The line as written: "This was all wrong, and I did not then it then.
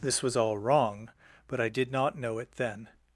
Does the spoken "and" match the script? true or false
false